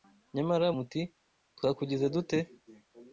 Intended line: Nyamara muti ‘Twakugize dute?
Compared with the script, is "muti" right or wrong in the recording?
right